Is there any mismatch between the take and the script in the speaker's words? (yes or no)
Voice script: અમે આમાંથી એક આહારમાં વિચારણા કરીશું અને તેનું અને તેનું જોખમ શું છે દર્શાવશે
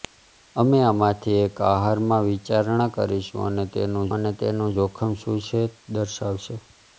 no